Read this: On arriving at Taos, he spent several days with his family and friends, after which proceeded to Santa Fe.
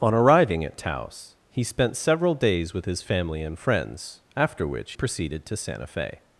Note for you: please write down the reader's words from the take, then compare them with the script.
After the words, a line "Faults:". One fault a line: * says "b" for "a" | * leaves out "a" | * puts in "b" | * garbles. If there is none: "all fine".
On arriving at Taos, he spent several days with his family and friends, after which proceeded to Santa Fe.
Faults:
all fine